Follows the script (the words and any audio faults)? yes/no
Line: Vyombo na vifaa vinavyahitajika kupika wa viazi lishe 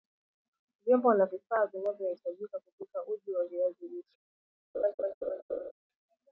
no